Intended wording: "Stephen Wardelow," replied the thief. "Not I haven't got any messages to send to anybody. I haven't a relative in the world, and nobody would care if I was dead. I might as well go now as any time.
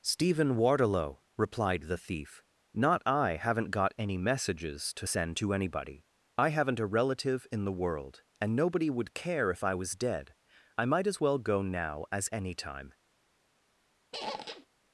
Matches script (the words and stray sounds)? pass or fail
fail